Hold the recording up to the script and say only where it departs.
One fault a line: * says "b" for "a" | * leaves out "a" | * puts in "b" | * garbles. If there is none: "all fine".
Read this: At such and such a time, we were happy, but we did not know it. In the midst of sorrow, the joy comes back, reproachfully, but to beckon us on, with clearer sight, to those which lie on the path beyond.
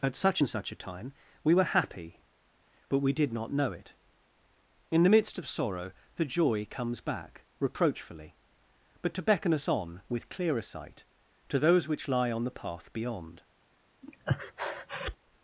all fine